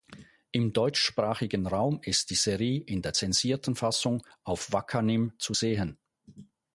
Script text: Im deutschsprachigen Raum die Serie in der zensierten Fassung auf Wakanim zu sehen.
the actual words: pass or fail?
fail